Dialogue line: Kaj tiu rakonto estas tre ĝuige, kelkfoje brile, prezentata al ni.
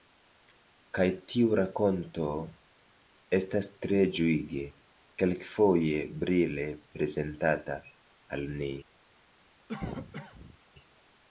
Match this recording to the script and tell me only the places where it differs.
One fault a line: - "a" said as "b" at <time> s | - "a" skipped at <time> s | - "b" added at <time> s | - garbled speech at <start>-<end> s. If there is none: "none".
none